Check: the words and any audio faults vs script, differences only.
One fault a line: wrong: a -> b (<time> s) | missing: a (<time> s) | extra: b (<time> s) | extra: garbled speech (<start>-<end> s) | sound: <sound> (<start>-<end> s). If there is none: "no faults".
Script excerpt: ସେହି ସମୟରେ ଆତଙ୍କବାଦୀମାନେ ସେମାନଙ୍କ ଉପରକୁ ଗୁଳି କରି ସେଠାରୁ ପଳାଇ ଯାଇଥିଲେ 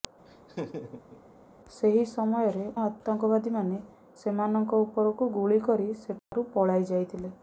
sound: laugh (0.3-1.2 s)
sound: dropout (6.2-6.3 s)